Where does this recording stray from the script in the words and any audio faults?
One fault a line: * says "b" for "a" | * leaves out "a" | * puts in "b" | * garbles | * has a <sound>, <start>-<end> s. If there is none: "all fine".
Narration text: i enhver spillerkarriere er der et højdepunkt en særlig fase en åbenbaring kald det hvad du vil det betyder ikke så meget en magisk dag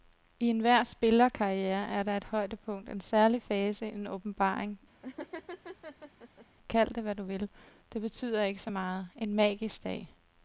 * has a laugh, 5.0-6.5 s